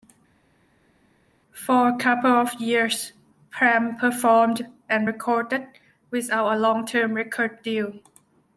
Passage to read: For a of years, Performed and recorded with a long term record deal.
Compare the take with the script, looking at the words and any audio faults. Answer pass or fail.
fail